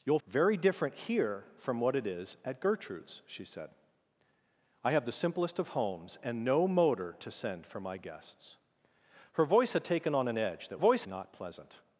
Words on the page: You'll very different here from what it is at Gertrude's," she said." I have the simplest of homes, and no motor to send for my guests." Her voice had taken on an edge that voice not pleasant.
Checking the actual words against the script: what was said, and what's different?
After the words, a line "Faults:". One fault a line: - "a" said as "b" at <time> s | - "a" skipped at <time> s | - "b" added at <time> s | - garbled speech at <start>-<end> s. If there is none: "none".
You'll very different here from what it is at Gertrude's," she said." I have the simplest of homes, and no motor to send for my guests." Her voice had taken on an edge that voice not pleasant.
Faults:
none